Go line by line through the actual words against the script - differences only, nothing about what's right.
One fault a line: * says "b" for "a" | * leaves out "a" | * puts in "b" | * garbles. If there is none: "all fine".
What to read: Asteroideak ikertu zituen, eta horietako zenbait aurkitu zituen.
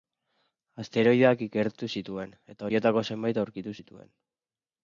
all fine